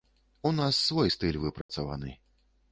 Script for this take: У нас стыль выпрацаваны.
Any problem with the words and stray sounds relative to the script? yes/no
yes